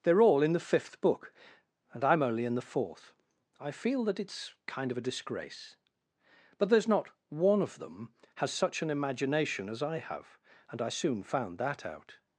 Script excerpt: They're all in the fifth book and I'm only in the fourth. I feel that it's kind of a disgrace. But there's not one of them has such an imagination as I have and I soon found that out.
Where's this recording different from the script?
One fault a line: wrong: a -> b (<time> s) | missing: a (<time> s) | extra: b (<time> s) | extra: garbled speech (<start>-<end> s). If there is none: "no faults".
no faults